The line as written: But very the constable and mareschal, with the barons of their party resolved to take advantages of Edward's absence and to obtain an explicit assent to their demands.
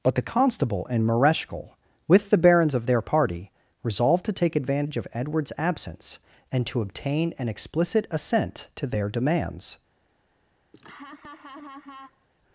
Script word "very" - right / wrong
wrong